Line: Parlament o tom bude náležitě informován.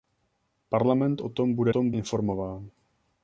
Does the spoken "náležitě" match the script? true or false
false